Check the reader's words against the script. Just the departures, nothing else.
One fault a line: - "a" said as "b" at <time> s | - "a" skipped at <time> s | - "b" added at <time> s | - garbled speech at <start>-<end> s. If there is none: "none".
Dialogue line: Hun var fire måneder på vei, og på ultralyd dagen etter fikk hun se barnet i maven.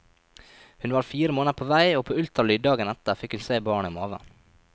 none